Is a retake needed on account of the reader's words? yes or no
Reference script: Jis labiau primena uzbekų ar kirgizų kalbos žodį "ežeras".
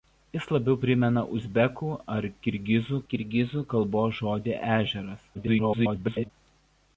yes